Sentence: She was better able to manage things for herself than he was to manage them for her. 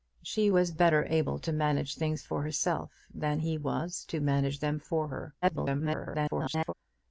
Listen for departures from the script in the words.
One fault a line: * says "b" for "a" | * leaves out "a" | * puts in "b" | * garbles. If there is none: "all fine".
* garbles